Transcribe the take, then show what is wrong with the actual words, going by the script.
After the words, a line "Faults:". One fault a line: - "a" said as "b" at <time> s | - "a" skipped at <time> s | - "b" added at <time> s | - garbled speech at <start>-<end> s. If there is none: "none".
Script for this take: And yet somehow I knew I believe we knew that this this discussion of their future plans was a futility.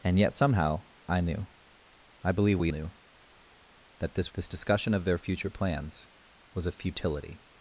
And yet somehow I knew I believe we knew that this this discussion of their future plans was a futility.
Faults:
none